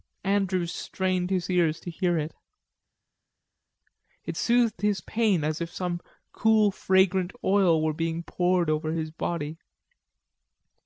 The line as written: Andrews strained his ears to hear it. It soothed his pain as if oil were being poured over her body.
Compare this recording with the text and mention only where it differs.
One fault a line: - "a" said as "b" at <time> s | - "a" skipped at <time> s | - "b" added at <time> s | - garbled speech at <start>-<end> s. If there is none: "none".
- "some cool fragrant" added at 5.7 s
- "her" said as "his" at 8.9 s